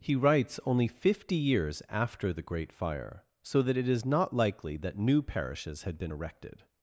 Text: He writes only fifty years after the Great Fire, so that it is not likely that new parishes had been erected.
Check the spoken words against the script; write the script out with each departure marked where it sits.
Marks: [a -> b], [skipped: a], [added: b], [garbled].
He writes only fifty years after the Great Fire, so that it is not likely that new parishes had been erected.